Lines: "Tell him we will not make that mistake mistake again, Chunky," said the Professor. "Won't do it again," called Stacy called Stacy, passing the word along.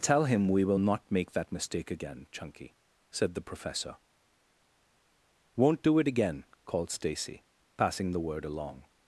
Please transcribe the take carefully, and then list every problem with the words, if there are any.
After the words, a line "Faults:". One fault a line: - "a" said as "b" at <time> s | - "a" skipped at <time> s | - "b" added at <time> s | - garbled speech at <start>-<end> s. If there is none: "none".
"Tell him we will not make that mistake again, Chunky," said the Professor. "Won't do it again," called Stacy, passing the word along.
Faults:
- "mistake" skipped at 1.9 s
- "called Stacy" skipped at 7.4 s